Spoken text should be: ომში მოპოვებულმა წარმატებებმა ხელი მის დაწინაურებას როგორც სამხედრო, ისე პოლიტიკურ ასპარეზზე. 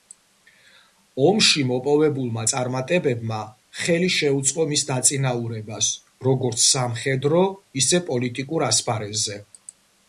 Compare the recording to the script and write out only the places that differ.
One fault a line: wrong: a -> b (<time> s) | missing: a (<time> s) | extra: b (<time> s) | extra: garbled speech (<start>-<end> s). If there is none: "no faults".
extra: შეუწყო (4.2 s)